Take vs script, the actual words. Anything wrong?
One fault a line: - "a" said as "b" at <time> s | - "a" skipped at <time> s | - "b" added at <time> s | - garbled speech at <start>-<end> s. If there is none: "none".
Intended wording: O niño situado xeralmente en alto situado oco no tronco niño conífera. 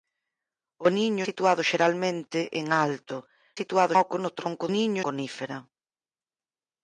none